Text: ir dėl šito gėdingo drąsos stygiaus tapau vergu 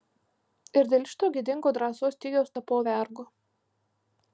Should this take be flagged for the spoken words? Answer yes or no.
no